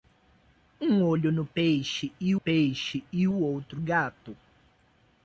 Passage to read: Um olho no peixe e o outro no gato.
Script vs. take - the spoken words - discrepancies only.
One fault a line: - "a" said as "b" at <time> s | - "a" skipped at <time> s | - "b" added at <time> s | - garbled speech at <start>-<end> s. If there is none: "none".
- "peixe e" added at 2.3 s
- "no" skipped at 3.8 s